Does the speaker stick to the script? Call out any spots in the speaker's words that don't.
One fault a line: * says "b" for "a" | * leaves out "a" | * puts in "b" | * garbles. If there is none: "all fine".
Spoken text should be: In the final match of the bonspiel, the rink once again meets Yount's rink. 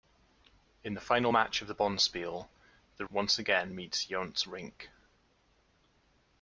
* leaves out "rink"